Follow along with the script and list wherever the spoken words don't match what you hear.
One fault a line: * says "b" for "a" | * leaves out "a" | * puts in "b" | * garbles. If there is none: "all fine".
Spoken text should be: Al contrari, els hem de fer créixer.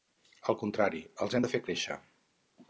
all fine